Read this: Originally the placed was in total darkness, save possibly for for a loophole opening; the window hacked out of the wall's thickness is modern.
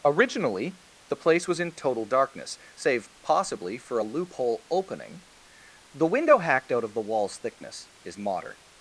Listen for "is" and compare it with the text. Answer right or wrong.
right